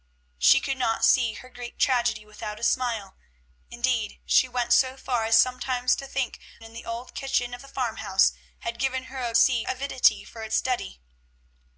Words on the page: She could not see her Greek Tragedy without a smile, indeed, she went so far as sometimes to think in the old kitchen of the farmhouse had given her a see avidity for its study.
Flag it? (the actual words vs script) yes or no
no